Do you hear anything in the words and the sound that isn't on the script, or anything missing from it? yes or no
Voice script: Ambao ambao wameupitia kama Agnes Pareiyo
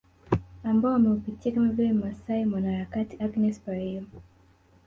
yes